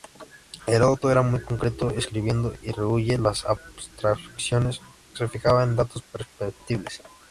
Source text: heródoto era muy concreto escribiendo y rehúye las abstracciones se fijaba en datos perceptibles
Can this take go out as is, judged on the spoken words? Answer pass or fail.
pass